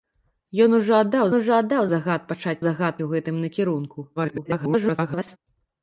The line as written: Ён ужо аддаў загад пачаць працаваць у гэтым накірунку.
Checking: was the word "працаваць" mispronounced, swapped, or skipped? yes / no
yes